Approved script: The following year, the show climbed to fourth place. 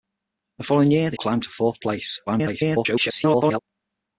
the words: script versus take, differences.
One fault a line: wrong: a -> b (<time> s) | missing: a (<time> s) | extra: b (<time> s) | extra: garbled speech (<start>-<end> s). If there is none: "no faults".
missing: show (1.2 s)
extra: garbled speech (2.3-3.6 s)